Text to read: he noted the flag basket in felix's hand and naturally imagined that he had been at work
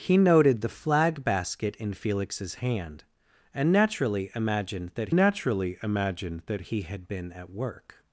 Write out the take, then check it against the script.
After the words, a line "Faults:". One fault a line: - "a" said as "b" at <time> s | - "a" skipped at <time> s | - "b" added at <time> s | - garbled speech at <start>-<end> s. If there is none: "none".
he noted the flag basket in felix's hand and naturally imagined that naturally imagined that he had been at work
Faults:
- "naturally imagined that" added at 5.1 s